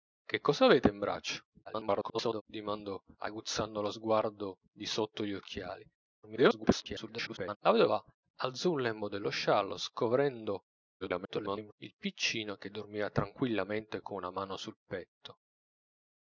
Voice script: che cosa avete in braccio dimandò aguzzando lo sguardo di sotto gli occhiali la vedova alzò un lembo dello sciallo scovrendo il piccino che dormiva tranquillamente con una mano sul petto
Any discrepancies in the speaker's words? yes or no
yes